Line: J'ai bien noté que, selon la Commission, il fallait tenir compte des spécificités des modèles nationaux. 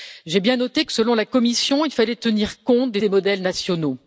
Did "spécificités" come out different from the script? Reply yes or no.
yes